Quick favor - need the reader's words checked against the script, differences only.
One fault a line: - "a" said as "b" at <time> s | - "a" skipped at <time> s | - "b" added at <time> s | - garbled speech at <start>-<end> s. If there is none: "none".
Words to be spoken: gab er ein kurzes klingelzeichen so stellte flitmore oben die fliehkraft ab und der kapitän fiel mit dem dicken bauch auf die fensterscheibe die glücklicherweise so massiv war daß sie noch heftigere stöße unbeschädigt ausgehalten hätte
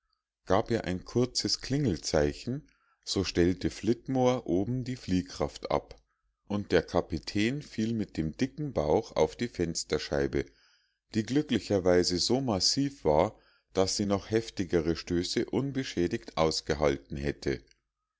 none